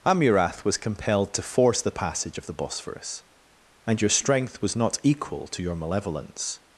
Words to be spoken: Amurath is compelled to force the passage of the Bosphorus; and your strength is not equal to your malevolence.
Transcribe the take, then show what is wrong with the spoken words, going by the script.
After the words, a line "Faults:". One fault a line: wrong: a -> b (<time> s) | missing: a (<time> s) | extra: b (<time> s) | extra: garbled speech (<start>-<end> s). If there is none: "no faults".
Amurath was compelled to force the passage of the Bosphorus; and your strength was not equal to your malevolence.
Faults:
wrong: is -> was (0.7 s)
wrong: is -> was (4.6 s)